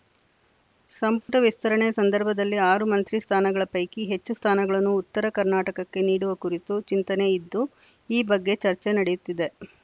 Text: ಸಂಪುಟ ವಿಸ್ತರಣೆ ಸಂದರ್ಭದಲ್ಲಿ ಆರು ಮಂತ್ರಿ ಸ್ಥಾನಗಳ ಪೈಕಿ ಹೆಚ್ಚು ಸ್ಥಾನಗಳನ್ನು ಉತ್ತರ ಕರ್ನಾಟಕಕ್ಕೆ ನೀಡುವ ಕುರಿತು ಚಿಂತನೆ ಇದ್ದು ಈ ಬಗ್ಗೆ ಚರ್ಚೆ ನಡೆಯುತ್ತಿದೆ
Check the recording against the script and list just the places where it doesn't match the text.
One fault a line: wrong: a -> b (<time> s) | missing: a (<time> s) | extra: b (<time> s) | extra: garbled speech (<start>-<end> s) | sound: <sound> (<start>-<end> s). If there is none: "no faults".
sound: dropout (1.2-1.3 s)